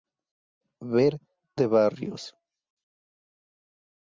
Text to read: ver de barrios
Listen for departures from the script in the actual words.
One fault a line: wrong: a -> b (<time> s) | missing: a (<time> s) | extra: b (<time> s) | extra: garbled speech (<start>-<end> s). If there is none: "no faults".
no faults